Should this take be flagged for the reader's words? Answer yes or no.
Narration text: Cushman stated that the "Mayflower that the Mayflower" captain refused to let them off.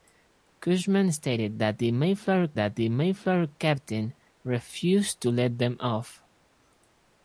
no